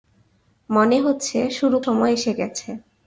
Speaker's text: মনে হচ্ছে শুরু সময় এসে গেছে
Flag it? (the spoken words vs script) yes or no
no